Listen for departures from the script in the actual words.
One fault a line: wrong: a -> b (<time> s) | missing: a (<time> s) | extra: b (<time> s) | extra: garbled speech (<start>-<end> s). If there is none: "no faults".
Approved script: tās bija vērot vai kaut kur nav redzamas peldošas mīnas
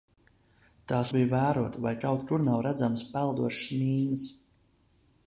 no faults